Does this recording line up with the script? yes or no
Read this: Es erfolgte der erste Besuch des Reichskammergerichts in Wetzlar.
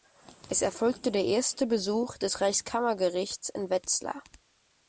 yes